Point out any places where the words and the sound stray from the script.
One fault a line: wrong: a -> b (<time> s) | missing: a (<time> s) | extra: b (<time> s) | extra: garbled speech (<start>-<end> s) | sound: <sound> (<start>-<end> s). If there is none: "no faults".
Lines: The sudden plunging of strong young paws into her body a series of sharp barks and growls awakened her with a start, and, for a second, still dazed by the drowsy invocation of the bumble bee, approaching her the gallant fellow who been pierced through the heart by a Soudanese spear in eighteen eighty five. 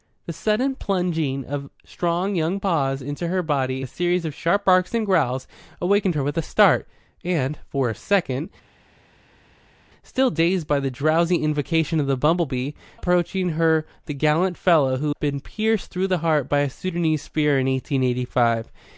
no faults